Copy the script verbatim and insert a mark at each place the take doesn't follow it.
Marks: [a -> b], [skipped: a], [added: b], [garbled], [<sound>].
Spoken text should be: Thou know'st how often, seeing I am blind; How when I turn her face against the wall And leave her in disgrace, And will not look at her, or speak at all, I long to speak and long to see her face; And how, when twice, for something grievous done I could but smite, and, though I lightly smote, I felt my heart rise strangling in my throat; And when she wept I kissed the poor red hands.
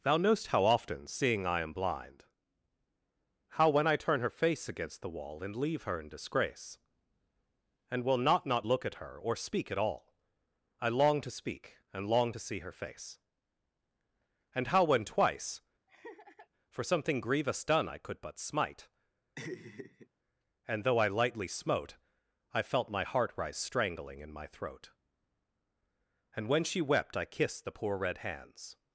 Thou know'st how often, seeing I am blind; How when I turn her face against the wall And leave her in disgrace, And will not [added: not] look at her, or speak at all, I long to speak and long to see her face; And how, when twice, [laugh] for something grievous done I could but smite, [laugh] and, though I lightly smote, I felt my heart rise strangling in my throat; And when she wept I kissed the poor red hands.